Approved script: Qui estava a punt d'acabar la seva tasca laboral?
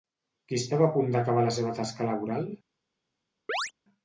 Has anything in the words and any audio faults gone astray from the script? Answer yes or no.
yes